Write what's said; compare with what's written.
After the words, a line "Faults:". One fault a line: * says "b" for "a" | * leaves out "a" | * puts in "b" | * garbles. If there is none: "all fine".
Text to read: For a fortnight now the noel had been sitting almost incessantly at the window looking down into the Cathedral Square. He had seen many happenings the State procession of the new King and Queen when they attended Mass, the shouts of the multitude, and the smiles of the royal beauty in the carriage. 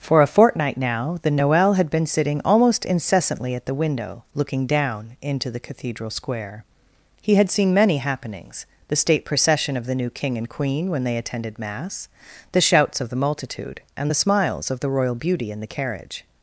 For a fortnight now the noel had been sitting almost incessantly at the window looking down into the Cathedral Square. He had seen many happenings the State procession of the new King and Queen when they attended Mass, the shouts of the multitude, and the smiles of the royal beauty in the carriage.
Faults:
all fine